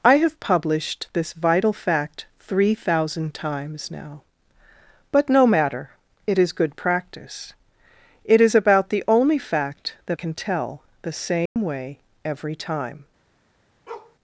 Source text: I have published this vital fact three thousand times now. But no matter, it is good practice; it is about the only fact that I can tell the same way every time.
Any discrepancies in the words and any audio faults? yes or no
yes